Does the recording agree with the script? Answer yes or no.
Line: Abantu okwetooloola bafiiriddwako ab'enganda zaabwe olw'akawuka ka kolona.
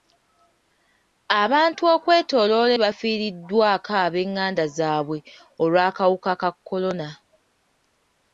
yes